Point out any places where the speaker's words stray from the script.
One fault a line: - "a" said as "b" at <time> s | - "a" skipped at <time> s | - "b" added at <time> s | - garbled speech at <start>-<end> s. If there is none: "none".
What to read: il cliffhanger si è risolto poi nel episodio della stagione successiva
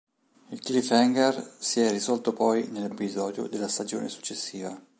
none